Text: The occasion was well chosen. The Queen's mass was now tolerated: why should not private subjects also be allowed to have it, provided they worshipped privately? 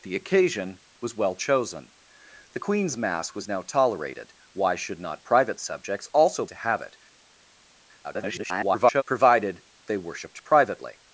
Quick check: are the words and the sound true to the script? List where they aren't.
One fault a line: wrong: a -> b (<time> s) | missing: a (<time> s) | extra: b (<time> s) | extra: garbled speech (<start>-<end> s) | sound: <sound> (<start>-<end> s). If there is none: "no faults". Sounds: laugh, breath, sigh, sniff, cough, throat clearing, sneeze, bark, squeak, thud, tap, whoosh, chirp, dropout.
missing: be allowed (6.5 s)
extra: garbled speech (8.0-9.0 s)